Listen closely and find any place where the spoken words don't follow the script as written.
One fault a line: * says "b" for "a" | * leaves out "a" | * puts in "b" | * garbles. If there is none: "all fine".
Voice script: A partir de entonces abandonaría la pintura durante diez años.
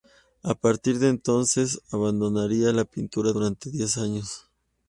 all fine